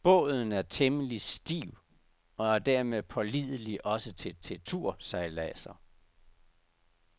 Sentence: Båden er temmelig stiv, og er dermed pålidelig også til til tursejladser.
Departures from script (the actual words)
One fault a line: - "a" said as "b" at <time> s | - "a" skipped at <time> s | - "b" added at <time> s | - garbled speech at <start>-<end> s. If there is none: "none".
none